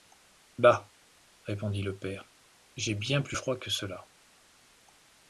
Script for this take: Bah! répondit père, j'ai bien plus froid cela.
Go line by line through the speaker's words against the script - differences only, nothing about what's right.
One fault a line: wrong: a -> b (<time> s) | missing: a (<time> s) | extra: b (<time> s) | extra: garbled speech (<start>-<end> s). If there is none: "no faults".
extra: le (1.8 s)
extra: que (3.6 s)